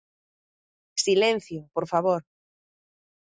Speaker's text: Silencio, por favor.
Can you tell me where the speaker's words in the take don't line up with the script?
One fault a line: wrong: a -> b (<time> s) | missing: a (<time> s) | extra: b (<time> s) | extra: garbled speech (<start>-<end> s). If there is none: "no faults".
no faults